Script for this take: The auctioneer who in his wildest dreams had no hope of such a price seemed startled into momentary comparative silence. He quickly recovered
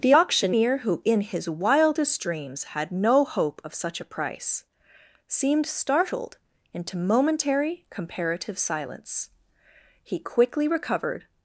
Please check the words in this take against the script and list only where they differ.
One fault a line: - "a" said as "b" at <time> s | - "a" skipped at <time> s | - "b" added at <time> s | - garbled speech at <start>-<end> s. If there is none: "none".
none